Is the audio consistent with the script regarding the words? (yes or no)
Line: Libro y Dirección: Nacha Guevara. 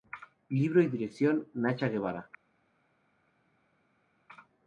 yes